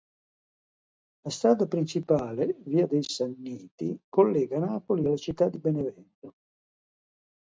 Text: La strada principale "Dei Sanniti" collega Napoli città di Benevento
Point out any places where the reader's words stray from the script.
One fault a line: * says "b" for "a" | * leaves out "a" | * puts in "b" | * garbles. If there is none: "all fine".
* puts in "Via"
* puts in "alla"